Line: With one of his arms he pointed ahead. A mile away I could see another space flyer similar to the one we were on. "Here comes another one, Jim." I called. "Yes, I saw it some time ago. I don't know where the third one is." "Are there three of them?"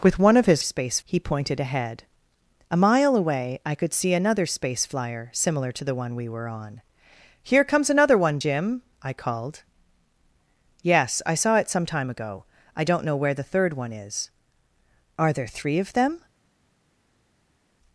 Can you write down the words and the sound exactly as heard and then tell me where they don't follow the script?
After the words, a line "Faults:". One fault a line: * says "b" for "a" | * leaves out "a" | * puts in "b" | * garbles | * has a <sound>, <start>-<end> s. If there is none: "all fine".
With one of his space he pointed ahead. A mile away I could see another space flyer similar to the one we were on. "Here comes another one, Jim." I called. "Yes, I saw it some time ago. I don't know where the third one is." "Are there three of them?"
Faults:
* says "space" for "arms"